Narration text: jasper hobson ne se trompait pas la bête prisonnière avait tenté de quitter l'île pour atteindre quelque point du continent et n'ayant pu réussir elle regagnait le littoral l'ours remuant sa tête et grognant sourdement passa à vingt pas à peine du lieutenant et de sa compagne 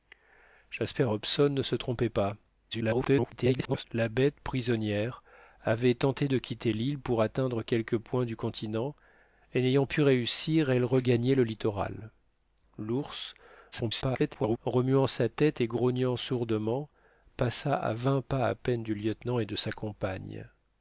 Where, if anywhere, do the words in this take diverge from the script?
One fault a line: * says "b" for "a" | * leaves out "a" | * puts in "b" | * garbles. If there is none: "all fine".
* garbles
* garbles